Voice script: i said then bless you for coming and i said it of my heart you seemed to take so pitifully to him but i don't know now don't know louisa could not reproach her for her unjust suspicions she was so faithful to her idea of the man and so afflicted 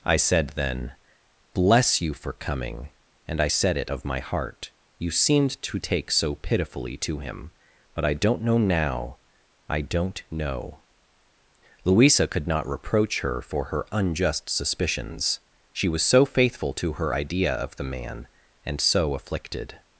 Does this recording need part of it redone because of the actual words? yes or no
yes